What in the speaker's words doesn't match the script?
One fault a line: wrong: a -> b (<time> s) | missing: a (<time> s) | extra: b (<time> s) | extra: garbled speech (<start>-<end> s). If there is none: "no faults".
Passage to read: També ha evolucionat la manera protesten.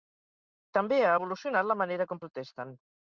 extra: com (2.1 s)